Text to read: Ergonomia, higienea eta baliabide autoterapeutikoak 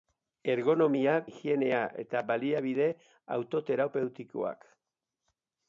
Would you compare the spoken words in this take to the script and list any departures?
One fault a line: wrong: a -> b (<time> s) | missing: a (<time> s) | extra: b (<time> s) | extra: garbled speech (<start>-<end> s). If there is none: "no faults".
no faults